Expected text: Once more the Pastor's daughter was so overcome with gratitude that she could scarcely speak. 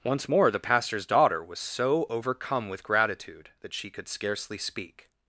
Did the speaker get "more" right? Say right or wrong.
right